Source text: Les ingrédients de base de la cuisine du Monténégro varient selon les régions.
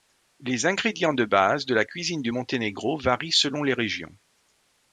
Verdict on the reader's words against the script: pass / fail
pass